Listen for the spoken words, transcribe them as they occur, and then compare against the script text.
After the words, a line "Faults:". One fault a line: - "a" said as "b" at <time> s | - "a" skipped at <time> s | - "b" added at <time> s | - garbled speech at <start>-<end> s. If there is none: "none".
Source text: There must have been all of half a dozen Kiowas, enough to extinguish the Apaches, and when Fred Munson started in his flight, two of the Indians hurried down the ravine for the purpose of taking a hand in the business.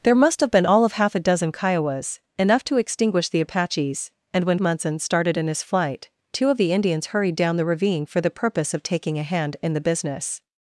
There must have been all of half a dozen Kiowas, enough to extinguish the Apaches, and when Munson started in his flight, two of the Indians hurried down the ravine for the purpose of taking a hand in the business.
Faults:
- "Fred" skipped at 4.6 s